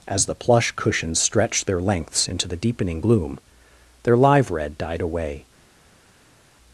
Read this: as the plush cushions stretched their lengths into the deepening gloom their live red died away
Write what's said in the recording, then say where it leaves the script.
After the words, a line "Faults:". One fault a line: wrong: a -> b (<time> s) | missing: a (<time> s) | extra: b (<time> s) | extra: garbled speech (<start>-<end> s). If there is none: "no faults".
as the plush cushions stretched their lengths into the deepening gloom their live red died away
Faults:
no faults